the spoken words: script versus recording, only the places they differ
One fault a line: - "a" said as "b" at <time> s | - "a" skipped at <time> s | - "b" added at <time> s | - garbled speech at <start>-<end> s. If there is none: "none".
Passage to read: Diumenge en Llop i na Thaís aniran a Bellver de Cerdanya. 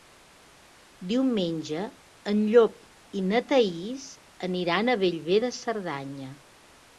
none